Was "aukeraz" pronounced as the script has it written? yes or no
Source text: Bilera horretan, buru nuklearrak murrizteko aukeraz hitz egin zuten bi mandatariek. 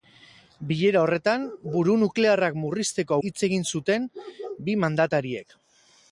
no